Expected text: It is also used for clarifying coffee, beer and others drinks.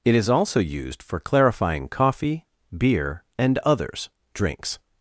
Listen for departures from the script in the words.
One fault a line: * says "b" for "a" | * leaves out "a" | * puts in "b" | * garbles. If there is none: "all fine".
all fine